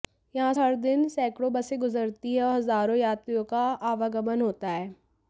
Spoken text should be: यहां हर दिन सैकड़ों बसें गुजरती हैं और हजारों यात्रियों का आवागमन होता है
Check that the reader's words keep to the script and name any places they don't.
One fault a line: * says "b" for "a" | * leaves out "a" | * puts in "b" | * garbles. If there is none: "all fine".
all fine